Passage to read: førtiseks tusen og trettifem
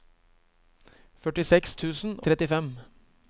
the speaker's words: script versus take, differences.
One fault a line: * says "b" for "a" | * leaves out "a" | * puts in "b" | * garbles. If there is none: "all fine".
* leaves out "og"